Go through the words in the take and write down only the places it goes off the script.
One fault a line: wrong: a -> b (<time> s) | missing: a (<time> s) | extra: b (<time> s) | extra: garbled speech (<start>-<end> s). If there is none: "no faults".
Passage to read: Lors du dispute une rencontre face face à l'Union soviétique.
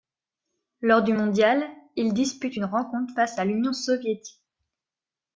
extra: mondial il (1.1 s)
missing: face (3.4 s)